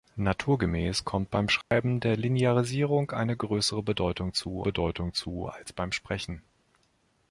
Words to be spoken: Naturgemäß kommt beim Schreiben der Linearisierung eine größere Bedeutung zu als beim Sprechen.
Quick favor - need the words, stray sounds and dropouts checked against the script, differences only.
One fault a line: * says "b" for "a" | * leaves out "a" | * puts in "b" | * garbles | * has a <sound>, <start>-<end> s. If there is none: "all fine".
* has a dropout, 1.6-1.7 s
* puts in "Bedeutung zu"